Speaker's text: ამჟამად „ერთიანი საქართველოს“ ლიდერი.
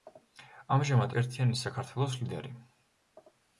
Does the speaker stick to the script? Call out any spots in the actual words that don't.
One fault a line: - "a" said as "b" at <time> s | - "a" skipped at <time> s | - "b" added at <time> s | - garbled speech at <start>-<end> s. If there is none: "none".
none